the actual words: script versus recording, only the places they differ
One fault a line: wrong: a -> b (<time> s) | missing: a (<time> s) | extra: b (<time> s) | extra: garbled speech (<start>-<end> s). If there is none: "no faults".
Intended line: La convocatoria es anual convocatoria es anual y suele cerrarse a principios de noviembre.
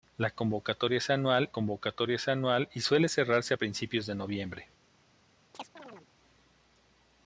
no faults